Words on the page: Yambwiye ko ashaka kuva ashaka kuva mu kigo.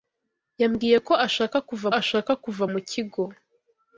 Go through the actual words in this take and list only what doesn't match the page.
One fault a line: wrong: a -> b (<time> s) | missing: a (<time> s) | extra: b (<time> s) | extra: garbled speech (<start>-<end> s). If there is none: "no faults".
no faults